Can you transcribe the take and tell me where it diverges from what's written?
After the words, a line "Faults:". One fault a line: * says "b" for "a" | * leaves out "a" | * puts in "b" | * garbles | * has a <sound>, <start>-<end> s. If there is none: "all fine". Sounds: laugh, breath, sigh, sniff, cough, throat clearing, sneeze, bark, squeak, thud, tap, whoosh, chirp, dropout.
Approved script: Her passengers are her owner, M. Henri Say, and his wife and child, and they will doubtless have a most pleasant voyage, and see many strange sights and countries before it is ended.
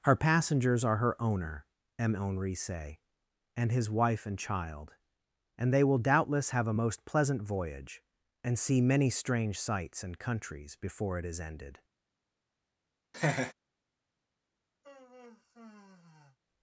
Her passengers are her owner, M. Henri Say, and his wife and child, and they will doubtless have a most pleasant voyage, and see many strange sights and countries before it is ended.
Faults:
* has a laugh, 13.1-13.5 s
* has a sigh, 14.8-16.4 s